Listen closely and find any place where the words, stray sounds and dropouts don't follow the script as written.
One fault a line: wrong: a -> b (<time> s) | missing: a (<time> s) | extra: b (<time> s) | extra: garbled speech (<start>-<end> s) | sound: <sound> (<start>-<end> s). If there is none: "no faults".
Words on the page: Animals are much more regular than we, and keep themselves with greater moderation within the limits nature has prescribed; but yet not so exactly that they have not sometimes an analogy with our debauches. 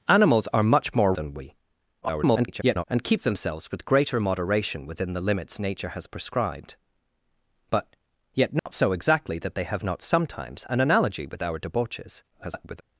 missing: regular (1.1 s)
extra: garbled speech (2.0-2.8 s)
sound: dropout (8.6-8.7 s)
extra: garbled speech (12.3-12.8 s)